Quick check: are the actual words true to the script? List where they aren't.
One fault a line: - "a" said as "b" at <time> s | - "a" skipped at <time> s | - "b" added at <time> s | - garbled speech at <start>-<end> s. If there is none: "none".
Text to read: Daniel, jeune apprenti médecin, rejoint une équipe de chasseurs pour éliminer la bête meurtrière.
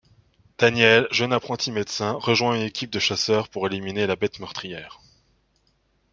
none